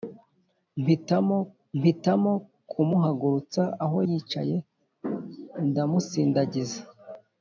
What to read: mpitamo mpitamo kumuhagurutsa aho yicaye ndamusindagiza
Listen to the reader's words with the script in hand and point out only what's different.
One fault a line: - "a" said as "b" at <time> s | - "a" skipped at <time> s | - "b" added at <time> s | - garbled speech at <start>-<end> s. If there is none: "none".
none